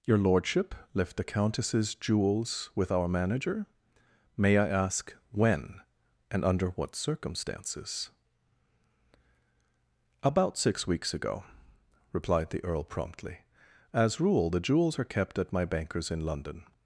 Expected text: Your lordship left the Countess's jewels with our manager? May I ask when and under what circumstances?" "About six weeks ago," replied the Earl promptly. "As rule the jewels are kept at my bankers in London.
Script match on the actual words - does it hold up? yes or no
yes